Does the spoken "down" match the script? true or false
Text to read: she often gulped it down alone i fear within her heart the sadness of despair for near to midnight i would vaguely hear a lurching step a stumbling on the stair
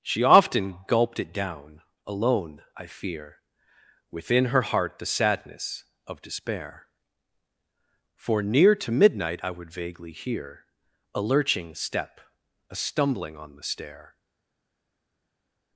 true